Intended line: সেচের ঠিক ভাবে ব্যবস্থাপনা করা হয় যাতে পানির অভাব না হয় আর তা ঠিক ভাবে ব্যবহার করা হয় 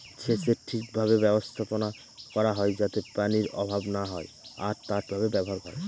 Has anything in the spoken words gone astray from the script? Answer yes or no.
yes